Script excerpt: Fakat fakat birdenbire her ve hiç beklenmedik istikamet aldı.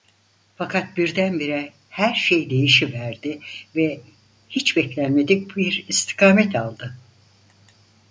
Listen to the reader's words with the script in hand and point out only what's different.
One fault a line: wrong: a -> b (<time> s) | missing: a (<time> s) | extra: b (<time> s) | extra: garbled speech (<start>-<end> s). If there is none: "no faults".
missing: fakat (1.0 s)
extra: şey değişiverdi (2.1 s)
extra: bir (5.6 s)